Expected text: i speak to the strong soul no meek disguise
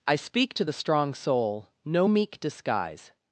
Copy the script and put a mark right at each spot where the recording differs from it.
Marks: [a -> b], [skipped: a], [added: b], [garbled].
i speak to the strong soul no meek disguise